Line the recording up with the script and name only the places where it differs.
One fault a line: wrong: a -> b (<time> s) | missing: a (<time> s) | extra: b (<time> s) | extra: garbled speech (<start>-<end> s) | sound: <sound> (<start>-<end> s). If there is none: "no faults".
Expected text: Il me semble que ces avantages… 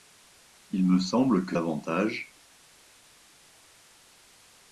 missing: ces (1.6 s)